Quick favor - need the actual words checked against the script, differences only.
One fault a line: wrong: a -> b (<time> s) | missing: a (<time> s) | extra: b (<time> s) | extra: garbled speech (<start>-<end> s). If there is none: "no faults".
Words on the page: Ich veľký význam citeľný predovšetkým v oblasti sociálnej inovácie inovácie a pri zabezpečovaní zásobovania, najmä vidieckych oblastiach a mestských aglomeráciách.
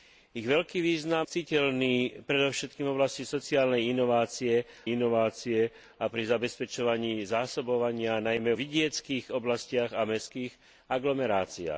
no faults